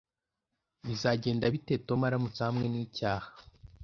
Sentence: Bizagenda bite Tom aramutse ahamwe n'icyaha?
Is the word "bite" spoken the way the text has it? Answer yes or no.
yes